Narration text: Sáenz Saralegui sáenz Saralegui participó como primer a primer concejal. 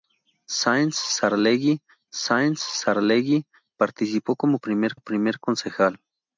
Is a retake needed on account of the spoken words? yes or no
no